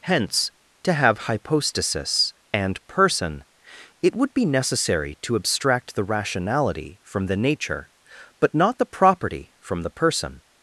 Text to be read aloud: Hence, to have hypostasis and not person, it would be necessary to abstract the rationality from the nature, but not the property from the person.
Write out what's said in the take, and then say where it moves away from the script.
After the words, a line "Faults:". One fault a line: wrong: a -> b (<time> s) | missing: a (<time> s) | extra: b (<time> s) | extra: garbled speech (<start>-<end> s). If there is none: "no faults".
Hence, to have hypostasis and person, it would be necessary to abstract the rationality from the nature, but not the property from the person.
Faults:
missing: not (2.9 s)